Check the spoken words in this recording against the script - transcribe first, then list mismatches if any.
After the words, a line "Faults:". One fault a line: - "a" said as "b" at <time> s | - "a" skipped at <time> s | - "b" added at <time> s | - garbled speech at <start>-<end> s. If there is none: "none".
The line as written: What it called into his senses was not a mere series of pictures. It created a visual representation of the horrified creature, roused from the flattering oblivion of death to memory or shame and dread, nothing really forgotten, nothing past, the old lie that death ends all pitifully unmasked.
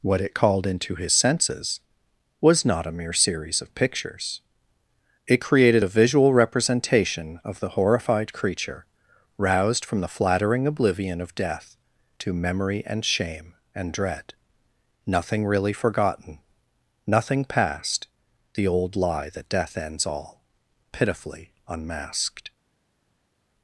What it called into his senses was not a mere series of pictures. It created a visual representation of the horrified creature, roused from the flattering oblivion of death to memory and shame and dread, nothing really forgotten, nothing past, the old lie that death ends all pitifully unmasked.
Faults:
- "or" said as "and" at 12.9 s